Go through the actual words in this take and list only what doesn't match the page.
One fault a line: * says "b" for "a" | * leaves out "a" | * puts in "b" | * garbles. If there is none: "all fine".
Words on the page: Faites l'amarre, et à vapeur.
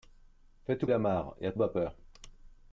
all fine